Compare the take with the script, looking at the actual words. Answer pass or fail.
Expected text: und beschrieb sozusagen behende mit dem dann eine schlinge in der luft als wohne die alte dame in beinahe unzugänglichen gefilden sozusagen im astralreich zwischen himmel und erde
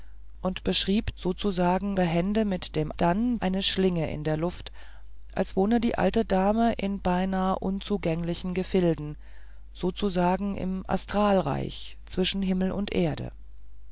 pass